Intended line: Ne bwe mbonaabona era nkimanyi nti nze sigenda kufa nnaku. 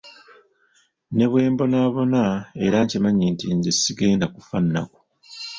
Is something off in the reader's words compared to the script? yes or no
no